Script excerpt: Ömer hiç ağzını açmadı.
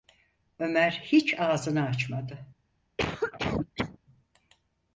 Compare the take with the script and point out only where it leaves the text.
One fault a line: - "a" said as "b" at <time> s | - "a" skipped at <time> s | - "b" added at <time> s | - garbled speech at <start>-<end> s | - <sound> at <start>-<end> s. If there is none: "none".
- cough at 3.0-4.0 s